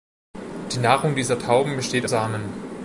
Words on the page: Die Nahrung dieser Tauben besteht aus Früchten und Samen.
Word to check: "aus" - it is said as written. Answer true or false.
false